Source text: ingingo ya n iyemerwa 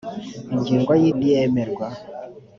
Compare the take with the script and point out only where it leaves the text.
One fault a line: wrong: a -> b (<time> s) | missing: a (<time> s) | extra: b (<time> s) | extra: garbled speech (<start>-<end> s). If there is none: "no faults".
no faults